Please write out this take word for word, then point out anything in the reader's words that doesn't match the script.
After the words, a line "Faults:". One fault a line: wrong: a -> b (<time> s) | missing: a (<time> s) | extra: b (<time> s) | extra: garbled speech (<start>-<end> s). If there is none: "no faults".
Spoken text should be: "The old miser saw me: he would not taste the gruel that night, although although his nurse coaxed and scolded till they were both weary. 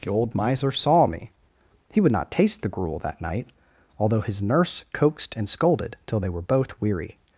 "The old miser saw me: he would not taste the gruel that night, although his nurse coaxed and scolded till they were both weary.
Faults:
missing: although (4.2 s)